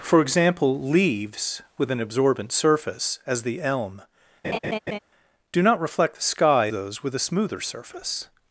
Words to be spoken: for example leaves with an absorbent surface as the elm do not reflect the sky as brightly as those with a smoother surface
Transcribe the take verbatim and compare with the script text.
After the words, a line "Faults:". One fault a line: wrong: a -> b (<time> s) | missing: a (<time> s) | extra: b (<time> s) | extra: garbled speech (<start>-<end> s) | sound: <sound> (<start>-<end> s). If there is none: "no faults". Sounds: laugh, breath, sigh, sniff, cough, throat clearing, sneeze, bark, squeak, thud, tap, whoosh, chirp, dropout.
for example leaves with an absorbent surface as the elm do not reflect the sky those with a smoother surface
Faults:
sound: laugh (4.4-5.0 s)
missing: as brightly as (6.7 s)